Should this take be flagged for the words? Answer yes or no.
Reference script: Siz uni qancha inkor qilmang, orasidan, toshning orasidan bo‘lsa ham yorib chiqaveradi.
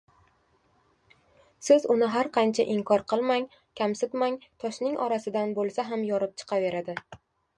yes